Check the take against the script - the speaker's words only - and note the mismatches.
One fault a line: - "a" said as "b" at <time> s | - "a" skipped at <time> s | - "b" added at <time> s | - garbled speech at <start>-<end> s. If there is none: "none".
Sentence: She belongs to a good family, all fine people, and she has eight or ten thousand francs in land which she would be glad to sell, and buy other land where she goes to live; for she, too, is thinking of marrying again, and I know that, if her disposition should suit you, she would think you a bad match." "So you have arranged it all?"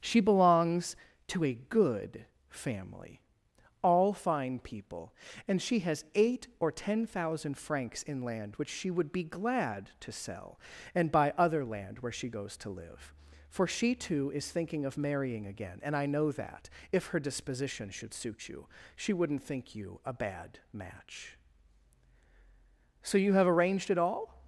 - "would" said as "wouldn't" at 19.1 s